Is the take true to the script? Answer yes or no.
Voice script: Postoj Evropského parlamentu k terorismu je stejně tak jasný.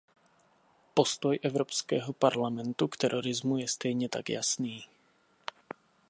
yes